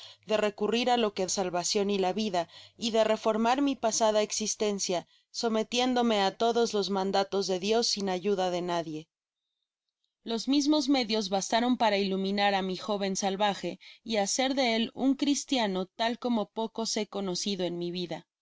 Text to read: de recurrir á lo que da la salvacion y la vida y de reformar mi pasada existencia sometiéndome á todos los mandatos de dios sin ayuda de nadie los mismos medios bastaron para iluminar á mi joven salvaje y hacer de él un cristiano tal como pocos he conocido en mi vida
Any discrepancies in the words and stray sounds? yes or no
yes